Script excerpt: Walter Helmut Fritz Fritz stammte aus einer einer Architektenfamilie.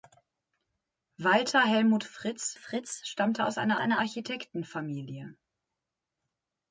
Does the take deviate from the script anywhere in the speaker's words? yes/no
no